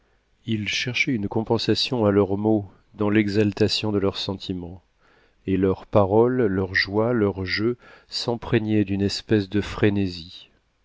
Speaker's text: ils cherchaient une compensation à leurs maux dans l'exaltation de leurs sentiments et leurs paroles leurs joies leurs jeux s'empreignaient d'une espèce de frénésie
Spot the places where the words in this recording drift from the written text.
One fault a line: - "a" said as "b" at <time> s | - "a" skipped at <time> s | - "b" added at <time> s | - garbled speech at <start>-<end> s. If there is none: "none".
none